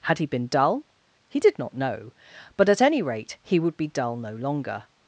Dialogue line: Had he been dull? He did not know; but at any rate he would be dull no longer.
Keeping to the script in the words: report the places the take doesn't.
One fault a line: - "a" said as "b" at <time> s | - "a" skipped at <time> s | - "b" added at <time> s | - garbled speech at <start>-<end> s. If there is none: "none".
none